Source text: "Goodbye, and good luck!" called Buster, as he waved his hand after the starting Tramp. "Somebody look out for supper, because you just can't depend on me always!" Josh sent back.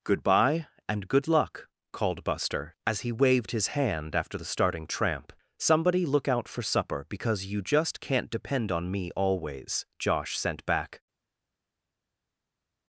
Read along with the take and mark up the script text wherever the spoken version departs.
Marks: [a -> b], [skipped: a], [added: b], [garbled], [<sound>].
"Goodbye, and good luck!" called Buster, as he waved his hand after the starting Tramp. "Somebody look out for supper, because you just can't depend on me always!" Josh sent back.